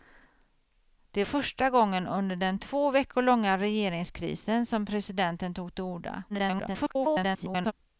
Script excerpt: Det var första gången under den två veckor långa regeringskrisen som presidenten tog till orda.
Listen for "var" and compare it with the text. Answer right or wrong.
wrong